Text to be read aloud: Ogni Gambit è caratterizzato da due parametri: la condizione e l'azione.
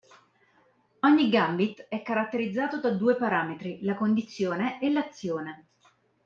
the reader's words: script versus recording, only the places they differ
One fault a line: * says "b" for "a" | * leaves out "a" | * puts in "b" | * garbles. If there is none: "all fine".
all fine